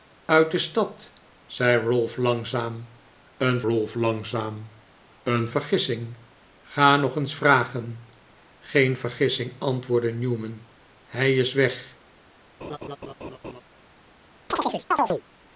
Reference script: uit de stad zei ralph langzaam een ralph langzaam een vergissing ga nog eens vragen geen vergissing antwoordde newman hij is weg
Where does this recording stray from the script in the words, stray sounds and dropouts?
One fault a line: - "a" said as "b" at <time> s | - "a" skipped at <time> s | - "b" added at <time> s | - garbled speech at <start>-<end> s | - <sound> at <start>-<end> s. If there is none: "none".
- laugh at 12.6-13.6 s
- chirp at 14.5-15.2 s